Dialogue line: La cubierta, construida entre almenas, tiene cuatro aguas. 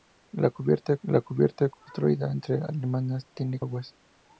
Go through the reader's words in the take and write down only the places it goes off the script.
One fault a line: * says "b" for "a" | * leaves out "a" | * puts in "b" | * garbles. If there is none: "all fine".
* puts in "la cubierta"
* leaves out "cuatro"